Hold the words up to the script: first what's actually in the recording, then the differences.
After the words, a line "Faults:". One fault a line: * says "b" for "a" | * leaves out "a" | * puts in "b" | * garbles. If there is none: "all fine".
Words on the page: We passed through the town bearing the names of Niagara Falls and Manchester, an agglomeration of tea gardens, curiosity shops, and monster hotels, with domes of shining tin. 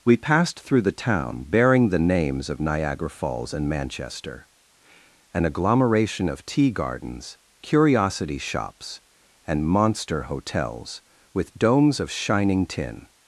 We passed through the town bearing the names of Niagara Falls and Manchester, an agglomeration of tea gardens, curiosity shops, and monster hotels, with domes of shining tin.
Faults:
all fine